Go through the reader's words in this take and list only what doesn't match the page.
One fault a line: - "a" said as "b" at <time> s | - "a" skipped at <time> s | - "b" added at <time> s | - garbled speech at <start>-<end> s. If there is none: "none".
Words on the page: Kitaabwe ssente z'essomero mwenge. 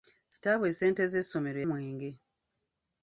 none